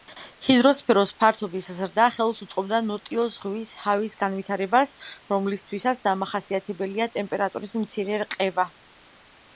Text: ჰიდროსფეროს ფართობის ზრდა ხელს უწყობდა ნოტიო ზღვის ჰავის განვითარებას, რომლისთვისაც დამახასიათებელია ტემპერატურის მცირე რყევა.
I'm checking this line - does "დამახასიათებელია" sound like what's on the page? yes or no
yes